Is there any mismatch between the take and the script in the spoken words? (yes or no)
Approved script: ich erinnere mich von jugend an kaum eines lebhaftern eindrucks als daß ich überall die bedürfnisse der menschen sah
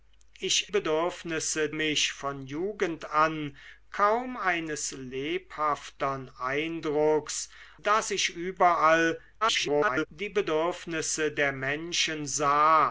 yes